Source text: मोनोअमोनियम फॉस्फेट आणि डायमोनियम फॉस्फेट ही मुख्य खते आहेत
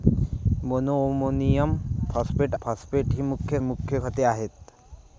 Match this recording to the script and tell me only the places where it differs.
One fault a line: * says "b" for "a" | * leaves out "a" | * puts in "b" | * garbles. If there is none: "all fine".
* leaves out "आणि डायमोनियम"
* puts in "मुख्य"